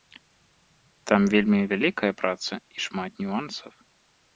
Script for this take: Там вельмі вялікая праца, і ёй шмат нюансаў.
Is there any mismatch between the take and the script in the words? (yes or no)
no